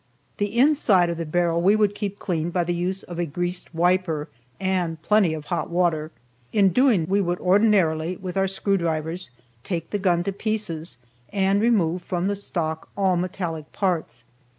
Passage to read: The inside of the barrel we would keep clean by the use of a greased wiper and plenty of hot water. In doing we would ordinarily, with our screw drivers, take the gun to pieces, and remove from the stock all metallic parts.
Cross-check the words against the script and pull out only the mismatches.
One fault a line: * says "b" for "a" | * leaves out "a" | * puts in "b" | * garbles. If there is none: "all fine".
all fine